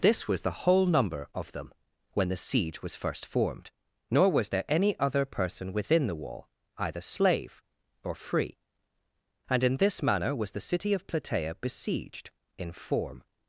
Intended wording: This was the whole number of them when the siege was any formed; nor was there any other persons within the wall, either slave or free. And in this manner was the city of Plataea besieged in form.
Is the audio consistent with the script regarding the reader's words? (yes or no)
no